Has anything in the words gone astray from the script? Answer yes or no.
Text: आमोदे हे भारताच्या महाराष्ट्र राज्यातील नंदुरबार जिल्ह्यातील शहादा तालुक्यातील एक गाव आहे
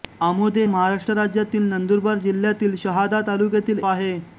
yes